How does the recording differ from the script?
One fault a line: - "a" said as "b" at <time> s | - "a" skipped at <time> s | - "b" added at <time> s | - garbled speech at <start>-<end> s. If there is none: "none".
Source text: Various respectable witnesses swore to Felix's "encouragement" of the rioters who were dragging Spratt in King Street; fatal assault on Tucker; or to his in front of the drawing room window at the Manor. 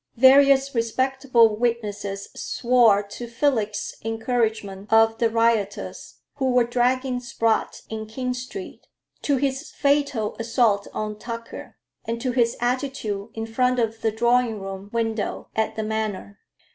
- "to his" added at 9.2 s
- "or" said as "and" at 12.0 s
- "attitude" added at 12.6 s